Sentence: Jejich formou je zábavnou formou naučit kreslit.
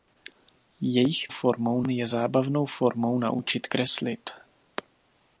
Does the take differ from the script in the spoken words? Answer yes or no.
no